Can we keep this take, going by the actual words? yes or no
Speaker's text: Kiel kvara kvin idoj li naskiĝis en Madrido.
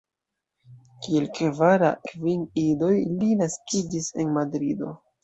yes